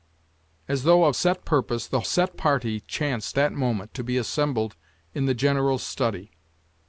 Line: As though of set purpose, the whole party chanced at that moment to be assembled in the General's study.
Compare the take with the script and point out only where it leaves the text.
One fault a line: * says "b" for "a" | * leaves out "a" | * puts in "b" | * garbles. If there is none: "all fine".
* says "set" for "whole"
* leaves out "at"